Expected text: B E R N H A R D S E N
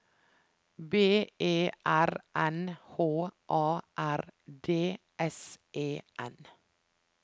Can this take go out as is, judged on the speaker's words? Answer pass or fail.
pass